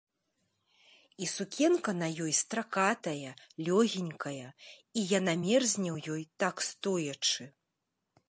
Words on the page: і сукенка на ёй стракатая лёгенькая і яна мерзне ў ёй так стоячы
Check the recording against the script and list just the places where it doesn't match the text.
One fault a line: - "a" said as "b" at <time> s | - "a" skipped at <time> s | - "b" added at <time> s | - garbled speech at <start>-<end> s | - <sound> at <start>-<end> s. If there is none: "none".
none